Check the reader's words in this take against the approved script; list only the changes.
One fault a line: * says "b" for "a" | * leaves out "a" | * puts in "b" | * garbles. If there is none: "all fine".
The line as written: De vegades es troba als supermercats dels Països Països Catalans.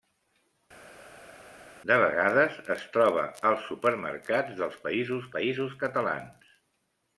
all fine